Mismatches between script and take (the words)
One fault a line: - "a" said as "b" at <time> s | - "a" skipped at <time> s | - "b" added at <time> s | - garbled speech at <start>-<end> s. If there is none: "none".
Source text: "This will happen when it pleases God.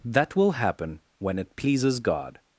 - "This" said as "That" at 0.1 s